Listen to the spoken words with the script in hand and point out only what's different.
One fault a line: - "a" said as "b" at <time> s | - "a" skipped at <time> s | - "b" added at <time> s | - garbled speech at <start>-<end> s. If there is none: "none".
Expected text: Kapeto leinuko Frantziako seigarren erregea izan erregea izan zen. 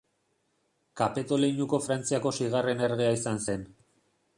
- "erregea izan" skipped at 3.5 s